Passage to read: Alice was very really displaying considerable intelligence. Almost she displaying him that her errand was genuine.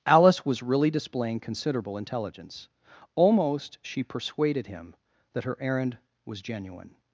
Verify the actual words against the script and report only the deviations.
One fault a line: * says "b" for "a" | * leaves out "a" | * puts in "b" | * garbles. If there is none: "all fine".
* leaves out "very"
* says "persuaded" for "displaying"